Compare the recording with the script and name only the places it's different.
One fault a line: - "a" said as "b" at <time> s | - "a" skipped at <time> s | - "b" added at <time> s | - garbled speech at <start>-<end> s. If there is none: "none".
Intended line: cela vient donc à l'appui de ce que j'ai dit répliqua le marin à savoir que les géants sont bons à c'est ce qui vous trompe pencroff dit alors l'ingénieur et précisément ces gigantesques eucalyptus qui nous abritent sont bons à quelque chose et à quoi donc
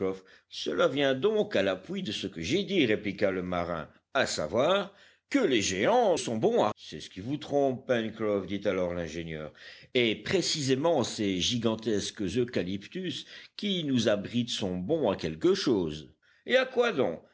none